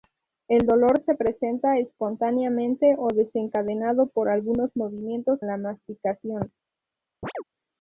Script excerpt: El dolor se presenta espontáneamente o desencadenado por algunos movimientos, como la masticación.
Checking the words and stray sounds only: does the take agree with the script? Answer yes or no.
no